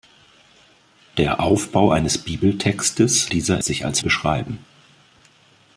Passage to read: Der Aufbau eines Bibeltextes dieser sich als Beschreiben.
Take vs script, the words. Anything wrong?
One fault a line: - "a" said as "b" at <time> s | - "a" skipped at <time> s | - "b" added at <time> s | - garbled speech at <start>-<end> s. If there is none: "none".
none